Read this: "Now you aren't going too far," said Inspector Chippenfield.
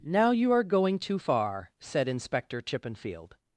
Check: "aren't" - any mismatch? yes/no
yes